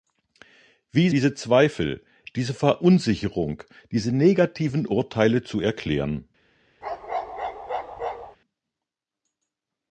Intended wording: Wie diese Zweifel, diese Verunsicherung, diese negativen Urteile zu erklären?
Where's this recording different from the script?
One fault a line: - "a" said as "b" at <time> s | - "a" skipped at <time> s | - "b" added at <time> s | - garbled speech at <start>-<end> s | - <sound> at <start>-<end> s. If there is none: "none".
- bark at 6.8-8.4 s